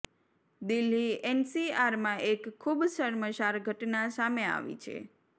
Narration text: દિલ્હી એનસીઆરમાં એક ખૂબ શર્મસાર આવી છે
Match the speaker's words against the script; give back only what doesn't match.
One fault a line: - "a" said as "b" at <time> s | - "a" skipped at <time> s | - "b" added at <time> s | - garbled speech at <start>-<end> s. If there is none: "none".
- "ઘટના સામે" added at 3.6 s